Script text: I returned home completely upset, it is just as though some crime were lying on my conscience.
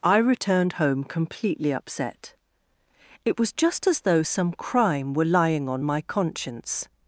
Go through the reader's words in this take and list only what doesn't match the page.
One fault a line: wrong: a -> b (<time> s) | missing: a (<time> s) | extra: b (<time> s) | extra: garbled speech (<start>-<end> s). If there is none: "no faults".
wrong: is -> was (3.4 s)